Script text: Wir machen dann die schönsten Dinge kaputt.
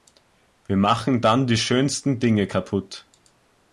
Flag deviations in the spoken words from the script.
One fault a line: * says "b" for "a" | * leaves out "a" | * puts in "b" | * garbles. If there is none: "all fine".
all fine